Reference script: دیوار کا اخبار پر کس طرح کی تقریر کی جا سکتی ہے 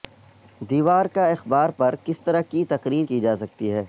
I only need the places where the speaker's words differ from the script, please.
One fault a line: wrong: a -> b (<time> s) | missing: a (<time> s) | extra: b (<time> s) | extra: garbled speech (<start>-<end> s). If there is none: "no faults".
no faults